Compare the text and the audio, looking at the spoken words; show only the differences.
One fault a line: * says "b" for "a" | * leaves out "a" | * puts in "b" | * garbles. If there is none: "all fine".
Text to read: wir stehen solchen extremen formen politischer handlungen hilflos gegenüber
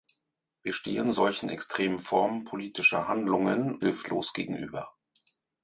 all fine